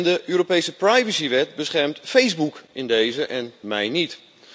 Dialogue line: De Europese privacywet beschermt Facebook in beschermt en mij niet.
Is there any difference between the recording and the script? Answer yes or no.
yes